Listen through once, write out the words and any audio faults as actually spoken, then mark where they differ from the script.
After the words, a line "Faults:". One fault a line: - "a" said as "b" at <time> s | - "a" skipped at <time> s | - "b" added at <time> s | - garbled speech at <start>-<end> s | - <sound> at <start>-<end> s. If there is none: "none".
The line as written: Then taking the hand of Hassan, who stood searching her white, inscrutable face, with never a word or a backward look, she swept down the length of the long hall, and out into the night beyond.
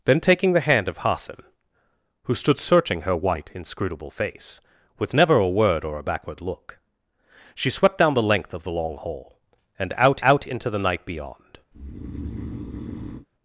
Then taking the hand of Hassan, who stood searching her white, inscrutable face, with never a word or a backward look, she swept down the length of the long hall, and out out into the night beyond.
Faults:
- "out" added at 10.2 s
- breath at 11.7-13.3 s